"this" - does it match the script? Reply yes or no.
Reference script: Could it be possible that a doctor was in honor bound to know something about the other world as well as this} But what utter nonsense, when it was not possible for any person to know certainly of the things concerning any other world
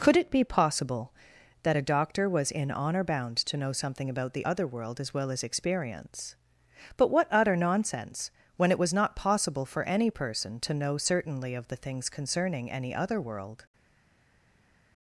no